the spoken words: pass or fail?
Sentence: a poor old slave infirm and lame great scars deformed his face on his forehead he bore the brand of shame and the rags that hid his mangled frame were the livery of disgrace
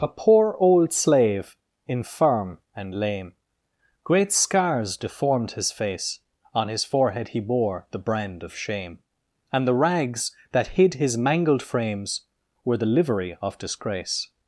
fail